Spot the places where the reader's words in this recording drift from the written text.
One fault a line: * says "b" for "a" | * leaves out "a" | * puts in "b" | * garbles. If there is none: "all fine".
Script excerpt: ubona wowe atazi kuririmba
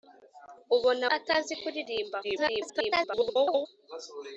* leaves out "wowe"
* garbles